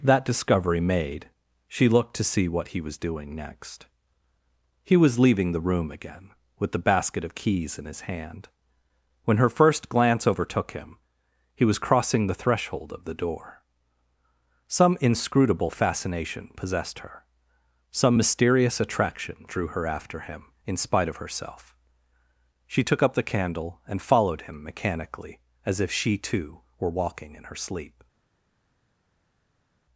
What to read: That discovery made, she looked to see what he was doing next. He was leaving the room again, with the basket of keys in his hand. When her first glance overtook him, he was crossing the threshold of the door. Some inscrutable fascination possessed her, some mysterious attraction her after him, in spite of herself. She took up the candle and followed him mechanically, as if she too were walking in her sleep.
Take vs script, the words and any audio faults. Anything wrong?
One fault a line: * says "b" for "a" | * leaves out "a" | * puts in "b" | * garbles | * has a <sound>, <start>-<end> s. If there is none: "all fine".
* puts in "drew"